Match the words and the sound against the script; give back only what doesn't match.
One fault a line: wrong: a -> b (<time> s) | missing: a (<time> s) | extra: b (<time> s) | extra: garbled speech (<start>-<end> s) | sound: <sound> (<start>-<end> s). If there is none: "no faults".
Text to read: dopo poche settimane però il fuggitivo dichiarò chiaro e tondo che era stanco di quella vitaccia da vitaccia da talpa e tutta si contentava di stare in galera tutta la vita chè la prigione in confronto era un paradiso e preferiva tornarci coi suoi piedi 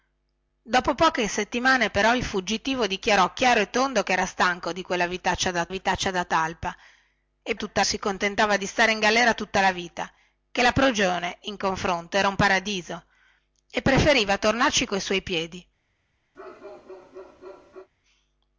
sound: bark (16.3-17.9 s)